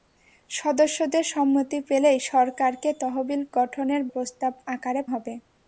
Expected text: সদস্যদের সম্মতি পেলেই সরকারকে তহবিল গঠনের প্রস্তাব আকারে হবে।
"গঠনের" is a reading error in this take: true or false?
false